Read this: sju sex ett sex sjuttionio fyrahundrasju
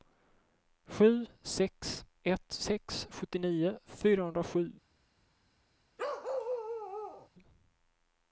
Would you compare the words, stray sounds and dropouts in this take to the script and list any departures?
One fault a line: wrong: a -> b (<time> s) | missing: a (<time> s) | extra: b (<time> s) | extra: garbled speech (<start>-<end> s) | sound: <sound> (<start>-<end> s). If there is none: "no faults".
sound: bark (6.0-7.3 s)